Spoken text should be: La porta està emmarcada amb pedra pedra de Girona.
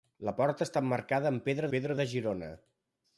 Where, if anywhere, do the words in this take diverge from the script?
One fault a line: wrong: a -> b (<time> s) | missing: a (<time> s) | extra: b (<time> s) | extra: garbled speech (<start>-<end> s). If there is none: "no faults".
no faults